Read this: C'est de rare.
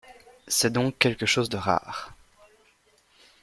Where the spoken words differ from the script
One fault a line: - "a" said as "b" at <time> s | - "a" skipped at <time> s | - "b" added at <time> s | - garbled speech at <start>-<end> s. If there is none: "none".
- "donc quelque chose" added at 0.7 s